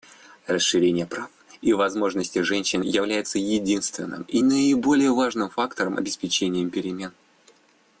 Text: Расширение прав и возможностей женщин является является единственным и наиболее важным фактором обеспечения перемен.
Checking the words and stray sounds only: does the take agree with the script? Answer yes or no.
no